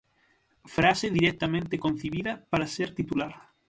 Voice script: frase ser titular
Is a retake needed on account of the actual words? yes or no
yes